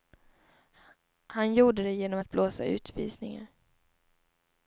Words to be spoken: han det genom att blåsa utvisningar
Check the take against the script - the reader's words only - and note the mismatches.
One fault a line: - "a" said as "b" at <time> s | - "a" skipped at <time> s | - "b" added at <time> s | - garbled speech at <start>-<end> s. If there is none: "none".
- "gjorde" added at 1.5 s